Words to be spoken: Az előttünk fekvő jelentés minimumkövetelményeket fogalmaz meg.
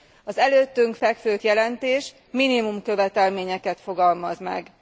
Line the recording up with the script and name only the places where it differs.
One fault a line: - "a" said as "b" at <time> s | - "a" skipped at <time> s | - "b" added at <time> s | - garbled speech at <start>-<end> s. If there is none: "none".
none